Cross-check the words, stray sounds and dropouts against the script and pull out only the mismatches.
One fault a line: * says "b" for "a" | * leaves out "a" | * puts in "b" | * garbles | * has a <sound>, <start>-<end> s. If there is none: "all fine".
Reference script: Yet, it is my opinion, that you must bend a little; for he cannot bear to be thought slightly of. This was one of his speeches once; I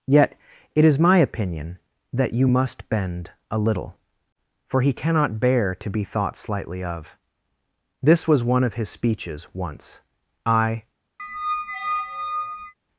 * has a squeak, 11.2-12.7 s